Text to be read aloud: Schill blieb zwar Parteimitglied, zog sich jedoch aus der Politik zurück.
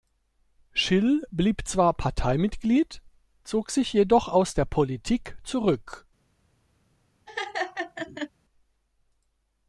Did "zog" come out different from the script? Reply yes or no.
no